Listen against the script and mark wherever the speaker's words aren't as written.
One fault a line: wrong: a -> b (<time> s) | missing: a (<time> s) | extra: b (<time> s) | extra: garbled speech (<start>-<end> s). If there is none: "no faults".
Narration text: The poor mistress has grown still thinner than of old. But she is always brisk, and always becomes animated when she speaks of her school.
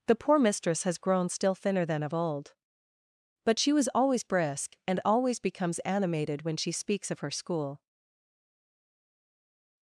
wrong: is -> was (3.7 s)